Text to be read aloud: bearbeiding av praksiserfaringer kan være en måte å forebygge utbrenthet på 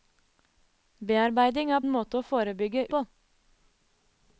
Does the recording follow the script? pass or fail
fail